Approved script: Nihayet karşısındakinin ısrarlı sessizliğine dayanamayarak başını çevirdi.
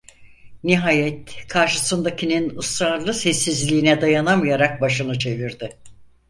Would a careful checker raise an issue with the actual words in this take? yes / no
no